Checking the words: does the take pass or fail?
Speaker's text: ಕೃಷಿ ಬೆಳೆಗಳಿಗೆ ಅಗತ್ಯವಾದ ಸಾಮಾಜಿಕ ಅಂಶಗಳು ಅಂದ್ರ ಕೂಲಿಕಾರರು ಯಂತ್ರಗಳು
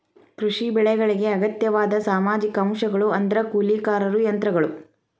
pass